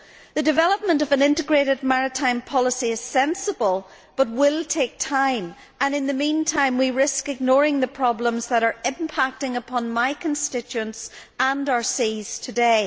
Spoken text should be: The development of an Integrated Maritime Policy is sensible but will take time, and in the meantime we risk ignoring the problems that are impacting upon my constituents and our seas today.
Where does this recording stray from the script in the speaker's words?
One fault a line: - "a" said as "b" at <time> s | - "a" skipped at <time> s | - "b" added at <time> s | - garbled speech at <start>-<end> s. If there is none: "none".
none